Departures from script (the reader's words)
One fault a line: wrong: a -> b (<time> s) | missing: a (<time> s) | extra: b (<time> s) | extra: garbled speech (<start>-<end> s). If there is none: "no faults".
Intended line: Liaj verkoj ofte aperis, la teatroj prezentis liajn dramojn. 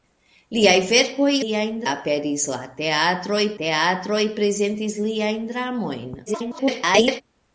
wrong: ofte -> liajn (1.4 s)
extra: teatroj (3.6 s)
extra: garbled speech (6.3-7.2 s)